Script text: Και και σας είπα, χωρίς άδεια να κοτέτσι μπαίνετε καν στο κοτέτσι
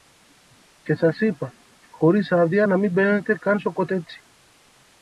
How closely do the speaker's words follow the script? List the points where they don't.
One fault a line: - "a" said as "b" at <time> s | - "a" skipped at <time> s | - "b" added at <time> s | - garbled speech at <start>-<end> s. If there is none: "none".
- "και" skipped at 0.9 s
- "κοτέτσι" said as "μην" at 2.8 s